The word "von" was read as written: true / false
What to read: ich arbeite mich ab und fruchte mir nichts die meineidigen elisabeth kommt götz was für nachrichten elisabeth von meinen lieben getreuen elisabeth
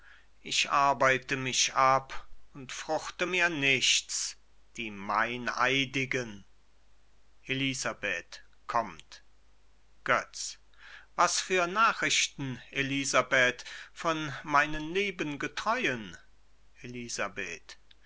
true